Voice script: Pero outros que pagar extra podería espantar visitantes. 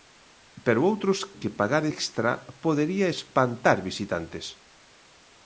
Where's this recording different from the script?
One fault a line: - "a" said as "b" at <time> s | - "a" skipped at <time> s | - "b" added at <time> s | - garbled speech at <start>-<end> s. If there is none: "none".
none